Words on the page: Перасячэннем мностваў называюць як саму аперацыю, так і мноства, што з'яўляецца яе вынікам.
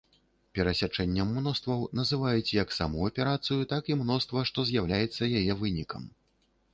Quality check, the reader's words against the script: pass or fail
pass